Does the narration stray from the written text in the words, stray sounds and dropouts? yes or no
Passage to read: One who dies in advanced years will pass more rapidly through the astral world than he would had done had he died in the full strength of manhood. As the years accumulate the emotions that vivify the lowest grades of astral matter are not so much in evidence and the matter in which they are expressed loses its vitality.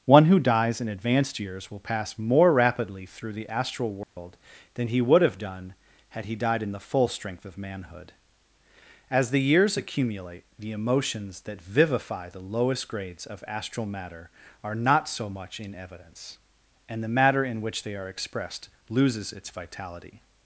yes